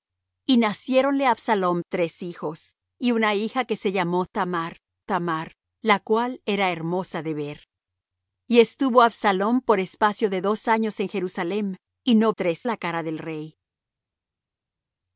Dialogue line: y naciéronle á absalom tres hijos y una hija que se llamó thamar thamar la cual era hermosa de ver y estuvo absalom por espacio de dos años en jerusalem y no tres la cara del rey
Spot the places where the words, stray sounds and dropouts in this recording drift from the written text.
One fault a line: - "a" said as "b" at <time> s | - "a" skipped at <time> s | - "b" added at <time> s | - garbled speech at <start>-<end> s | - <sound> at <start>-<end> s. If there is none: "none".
none